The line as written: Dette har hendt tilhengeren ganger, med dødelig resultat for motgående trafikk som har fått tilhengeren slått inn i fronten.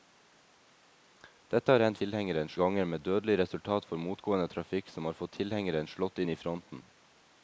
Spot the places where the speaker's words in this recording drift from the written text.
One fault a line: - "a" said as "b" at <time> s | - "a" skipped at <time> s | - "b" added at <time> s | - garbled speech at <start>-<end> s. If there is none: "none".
none